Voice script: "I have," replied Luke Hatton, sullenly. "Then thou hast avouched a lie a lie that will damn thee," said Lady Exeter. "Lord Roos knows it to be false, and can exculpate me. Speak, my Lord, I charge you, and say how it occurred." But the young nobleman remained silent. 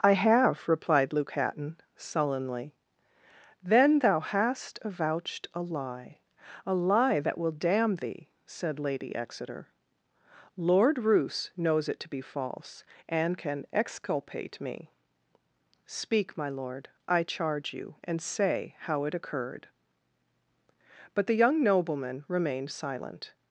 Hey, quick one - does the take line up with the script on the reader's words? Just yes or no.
yes